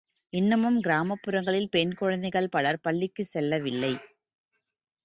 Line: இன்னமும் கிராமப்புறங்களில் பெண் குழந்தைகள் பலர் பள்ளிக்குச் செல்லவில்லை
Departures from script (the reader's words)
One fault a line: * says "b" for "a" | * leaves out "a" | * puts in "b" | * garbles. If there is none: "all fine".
all fine